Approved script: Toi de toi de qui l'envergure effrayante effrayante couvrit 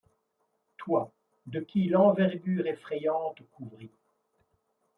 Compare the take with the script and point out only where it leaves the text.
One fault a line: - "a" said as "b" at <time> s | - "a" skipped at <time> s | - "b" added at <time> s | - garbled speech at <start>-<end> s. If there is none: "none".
- "toi de" skipped at 1.6 s
- "effrayante" skipped at 3.4 s